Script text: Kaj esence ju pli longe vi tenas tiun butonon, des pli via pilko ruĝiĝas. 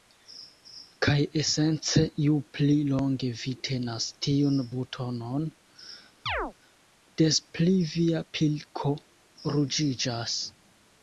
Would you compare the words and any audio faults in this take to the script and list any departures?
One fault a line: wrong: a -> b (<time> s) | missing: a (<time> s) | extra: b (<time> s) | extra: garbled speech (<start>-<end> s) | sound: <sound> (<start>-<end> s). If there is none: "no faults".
sound: chirp (6.3-6.5 s)